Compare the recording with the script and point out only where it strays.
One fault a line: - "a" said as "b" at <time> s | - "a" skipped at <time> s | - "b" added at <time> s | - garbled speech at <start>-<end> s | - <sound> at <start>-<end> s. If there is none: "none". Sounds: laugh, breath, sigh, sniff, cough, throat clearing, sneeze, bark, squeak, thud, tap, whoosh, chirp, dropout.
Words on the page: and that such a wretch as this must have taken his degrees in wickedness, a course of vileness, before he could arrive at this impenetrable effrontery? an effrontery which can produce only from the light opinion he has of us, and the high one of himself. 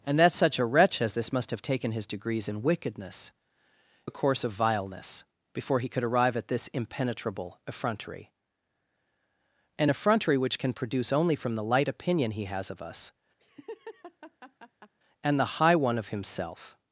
- laugh at 13.4-14.9 s